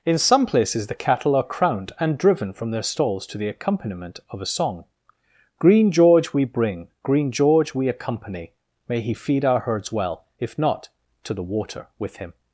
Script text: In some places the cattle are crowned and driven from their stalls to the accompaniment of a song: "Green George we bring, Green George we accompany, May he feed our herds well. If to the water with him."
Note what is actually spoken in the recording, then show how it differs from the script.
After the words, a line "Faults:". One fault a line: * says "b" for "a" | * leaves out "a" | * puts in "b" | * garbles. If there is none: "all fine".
In some places the cattle are crowned and driven from their stalls to the accompaniment of a song: "Green George we bring, Green George we accompany, May he feed our herds well. If not, to the water with him."
Faults:
* puts in "not"